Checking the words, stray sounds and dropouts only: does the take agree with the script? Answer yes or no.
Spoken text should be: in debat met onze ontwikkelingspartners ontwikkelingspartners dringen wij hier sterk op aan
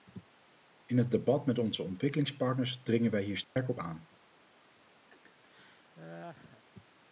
no